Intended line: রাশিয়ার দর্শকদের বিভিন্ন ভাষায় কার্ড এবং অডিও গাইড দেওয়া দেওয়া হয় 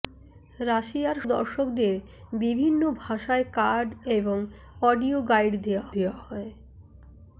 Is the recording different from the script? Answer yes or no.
no